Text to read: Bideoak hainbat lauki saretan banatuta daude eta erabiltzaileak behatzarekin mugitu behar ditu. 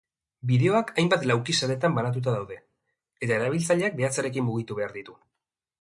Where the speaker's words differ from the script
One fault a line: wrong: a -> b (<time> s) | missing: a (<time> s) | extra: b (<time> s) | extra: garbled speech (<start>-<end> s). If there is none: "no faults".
no faults